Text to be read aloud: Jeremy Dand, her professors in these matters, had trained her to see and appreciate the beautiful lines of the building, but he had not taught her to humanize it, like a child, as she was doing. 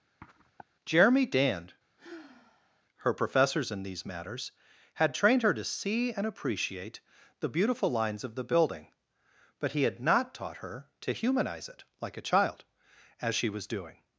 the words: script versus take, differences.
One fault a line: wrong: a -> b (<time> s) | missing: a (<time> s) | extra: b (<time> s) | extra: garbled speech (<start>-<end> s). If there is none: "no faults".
no faults